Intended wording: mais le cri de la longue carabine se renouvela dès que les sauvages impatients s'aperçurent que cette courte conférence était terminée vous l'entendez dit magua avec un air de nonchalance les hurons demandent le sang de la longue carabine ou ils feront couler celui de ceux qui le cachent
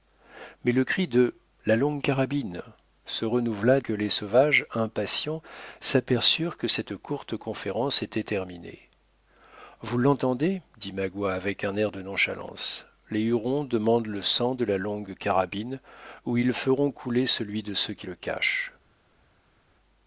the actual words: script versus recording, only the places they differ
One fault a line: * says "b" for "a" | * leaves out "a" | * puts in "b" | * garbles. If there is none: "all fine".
* leaves out "dès"